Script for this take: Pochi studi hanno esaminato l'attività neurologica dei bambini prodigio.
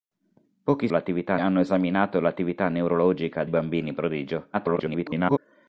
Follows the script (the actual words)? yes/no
no